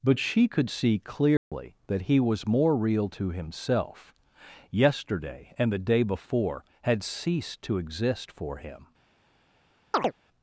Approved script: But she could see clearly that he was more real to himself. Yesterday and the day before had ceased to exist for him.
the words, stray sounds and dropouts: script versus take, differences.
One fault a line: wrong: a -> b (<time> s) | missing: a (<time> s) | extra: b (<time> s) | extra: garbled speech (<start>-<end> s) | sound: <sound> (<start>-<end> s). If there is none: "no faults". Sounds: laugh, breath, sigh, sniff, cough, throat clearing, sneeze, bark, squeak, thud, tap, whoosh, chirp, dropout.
sound: dropout (1.4-1.5 s)
sound: chirp (9.9-10.1 s)